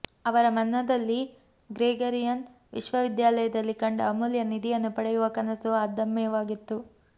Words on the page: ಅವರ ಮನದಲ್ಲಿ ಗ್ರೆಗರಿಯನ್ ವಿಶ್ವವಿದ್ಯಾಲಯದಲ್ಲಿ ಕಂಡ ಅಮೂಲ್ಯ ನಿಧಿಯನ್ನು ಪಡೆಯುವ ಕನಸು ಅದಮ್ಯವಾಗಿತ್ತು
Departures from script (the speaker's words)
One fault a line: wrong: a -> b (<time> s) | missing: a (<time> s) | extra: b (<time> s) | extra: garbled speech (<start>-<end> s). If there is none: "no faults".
no faults